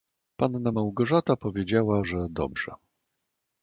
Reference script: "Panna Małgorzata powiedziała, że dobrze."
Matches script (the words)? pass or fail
pass